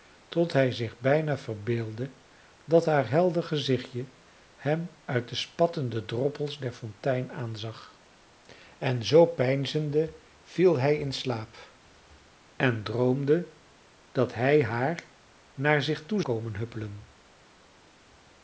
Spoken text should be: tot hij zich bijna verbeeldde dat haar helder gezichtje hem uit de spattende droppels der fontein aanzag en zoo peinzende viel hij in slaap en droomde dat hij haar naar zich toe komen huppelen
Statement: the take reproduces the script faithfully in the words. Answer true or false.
true